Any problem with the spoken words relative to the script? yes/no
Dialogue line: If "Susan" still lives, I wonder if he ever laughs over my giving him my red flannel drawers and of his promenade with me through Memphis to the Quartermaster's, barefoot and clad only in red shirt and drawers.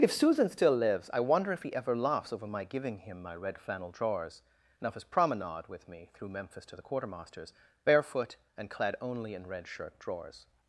yes